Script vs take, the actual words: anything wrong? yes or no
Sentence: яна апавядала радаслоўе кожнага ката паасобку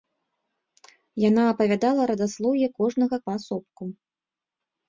yes